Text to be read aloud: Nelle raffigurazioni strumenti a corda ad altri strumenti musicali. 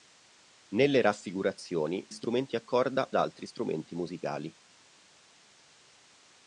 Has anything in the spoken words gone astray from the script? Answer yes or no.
no